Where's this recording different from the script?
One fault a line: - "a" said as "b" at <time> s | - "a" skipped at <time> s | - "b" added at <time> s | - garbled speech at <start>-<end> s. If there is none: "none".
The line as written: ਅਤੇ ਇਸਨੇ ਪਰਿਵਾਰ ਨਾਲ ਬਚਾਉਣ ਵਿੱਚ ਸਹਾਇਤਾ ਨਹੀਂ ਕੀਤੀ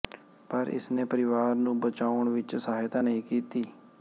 - "ਅਤੇ" said as "ਪਰ" at 0.5 s
- "ਨਾਲ" said as "ਨੂੰ" at 1.6 s